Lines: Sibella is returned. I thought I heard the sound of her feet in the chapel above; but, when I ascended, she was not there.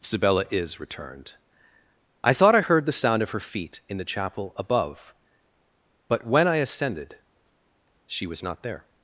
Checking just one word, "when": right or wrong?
right